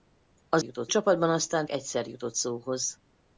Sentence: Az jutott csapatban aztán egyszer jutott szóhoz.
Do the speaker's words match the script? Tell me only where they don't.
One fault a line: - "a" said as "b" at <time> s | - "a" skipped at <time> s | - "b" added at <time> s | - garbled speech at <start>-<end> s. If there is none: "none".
none